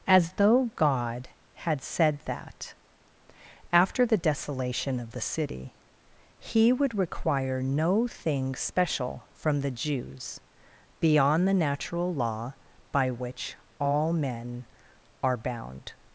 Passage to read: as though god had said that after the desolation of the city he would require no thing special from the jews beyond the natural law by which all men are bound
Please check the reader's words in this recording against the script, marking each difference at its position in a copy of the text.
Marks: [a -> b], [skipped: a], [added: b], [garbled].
as though god had said that after the desolation of the city he would require no thing special from the jews beyond the natural law by which all men are bound